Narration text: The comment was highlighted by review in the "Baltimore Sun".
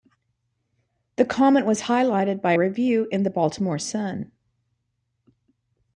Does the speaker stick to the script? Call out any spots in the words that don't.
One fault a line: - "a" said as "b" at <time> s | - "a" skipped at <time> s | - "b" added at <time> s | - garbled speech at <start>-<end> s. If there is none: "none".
none